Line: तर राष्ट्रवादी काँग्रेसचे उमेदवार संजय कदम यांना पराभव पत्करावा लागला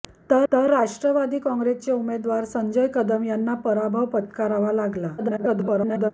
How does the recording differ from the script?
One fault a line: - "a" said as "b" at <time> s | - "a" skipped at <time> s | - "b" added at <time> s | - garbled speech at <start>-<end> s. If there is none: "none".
- "तर" added at 0.5 s
- garbled speech at 5.2-6.1 s